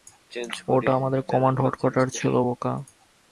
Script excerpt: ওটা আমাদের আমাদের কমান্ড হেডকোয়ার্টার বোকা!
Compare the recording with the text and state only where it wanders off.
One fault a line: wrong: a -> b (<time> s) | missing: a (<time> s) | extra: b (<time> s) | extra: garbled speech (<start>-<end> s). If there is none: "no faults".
missing: আমাদের (1.2 s)
extra: ছিল (2.2 s)